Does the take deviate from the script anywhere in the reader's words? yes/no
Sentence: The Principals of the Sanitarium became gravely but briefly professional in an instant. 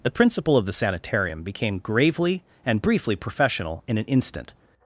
yes